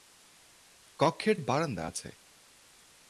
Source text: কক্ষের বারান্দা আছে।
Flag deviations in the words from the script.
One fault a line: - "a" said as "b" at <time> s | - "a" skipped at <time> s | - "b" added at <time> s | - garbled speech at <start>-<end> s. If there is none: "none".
none